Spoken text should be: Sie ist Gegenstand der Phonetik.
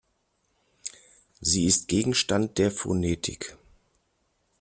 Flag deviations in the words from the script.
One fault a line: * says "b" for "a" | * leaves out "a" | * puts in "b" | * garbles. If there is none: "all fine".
all fine